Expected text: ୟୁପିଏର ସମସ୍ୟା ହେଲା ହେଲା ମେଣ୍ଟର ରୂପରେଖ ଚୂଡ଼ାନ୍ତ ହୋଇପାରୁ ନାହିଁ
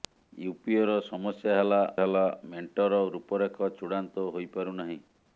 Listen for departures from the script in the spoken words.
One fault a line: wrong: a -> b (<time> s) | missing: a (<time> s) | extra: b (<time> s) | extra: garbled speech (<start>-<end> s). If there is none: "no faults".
no faults